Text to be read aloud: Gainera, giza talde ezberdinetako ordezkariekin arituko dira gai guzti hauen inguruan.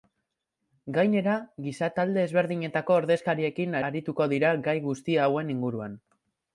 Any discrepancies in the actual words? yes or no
no